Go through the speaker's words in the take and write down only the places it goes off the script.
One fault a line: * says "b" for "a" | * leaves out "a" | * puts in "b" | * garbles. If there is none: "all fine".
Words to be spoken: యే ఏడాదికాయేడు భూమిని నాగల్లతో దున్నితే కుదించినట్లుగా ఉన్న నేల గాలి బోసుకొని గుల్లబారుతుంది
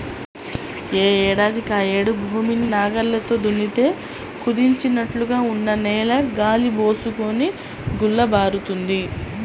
all fine